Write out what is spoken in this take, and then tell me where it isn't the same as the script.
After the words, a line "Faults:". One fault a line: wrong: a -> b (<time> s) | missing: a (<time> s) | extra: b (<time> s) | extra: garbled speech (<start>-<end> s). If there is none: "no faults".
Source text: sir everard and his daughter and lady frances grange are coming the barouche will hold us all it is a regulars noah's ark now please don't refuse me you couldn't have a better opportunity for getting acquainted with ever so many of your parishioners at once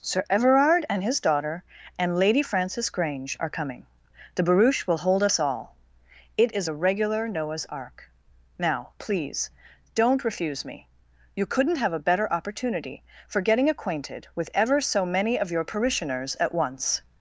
sir everard and his daughter and lady frances grange are coming the barouche will hold us all it is a regular noah's ark now please don't refuse me you couldn't have a better opportunity for getting acquainted with ever so many of your parishioners at once
Faults:
wrong: regulars -> regular (6.7 s)